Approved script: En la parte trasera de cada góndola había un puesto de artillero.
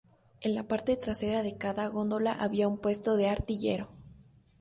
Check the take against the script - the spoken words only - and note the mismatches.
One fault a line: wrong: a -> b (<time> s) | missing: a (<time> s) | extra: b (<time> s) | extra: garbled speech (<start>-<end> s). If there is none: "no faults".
no faults